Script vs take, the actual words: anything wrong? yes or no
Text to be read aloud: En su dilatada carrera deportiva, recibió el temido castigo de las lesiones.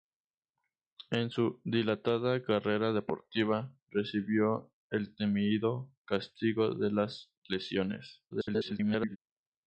yes